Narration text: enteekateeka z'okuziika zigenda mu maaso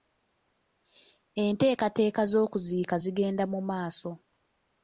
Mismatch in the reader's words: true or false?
false